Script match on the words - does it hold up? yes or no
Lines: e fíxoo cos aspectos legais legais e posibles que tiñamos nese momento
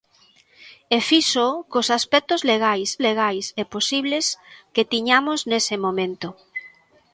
yes